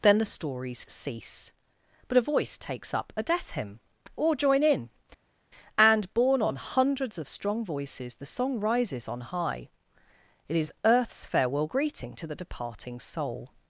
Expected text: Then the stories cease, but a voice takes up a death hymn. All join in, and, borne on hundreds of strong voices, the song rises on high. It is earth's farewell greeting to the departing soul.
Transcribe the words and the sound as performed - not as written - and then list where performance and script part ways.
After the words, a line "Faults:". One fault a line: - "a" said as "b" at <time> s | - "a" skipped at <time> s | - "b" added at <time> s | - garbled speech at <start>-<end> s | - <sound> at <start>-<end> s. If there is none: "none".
Then the stories cease, but a voice takes up a death hymn. Or join in, and, borne on hundreds of strong voices, the song rises on high. It is earth's farewell greeting to the departing soul.
Faults:
- "All" said as "Or" at 4.1 s